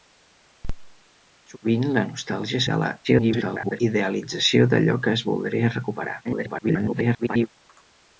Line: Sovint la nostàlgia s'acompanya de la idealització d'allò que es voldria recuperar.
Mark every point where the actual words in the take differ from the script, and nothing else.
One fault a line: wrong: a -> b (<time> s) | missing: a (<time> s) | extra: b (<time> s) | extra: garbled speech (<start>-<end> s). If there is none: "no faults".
missing: s'acompanya (2.6 s)
extra: garbled speech (3.0-3.8 s)
extra: garbled speech (6.2-7.5 s)